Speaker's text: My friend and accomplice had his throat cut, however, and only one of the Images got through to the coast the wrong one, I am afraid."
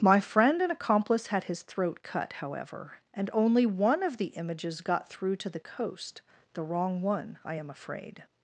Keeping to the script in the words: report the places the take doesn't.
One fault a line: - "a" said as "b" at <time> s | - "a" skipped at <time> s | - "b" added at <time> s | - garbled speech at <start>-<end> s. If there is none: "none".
none